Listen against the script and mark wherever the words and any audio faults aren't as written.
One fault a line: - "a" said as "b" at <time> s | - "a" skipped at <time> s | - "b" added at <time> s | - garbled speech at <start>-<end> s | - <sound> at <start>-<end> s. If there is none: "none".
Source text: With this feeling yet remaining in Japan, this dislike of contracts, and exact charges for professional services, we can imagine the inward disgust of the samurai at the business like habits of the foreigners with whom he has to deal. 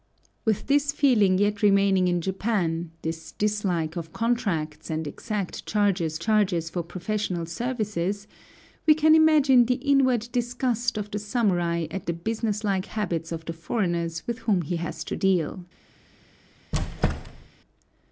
- "charges" added at 6.2 s
- squeak at 16.7-17.5 s